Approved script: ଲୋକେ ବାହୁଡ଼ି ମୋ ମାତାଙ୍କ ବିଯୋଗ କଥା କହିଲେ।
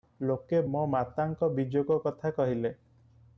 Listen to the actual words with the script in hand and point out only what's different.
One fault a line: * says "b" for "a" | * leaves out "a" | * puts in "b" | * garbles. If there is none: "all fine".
* leaves out "ବାହୁଡ଼ି"